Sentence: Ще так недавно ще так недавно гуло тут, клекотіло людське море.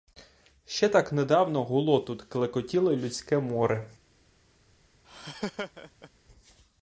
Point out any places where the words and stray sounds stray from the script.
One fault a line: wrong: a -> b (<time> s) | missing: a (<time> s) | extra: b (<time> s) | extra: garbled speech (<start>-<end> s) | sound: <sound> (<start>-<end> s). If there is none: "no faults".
missing: ще так недавно (1.6 s)
sound: laugh (5.0-6.1 s)